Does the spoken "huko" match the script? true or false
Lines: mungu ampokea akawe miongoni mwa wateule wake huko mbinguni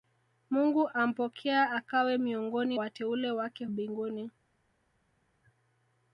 false